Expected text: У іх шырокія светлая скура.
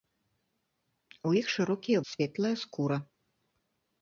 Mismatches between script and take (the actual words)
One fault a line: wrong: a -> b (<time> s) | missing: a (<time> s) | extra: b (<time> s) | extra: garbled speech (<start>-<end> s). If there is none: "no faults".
no faults